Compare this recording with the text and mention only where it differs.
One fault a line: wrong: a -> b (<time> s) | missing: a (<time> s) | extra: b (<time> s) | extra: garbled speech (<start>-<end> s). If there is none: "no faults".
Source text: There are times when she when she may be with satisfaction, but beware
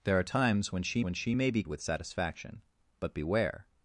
no faults